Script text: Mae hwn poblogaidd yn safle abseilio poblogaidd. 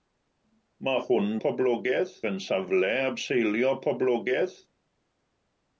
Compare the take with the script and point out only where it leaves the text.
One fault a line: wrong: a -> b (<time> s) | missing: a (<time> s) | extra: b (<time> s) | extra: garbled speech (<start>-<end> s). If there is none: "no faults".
no faults